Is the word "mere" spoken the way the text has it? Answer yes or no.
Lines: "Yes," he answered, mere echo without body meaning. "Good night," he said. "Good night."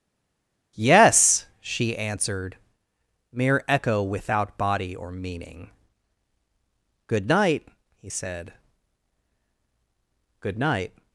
yes